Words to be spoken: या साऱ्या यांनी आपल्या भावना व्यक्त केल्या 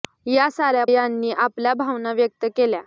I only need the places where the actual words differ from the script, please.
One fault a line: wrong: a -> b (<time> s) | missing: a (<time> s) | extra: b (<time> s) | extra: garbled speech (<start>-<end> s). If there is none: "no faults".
no faults